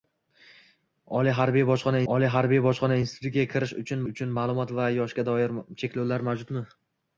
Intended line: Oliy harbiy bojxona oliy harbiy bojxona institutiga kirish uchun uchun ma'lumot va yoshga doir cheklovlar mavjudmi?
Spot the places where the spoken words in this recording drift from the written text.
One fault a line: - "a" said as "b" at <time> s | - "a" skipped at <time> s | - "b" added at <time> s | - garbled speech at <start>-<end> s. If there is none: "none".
none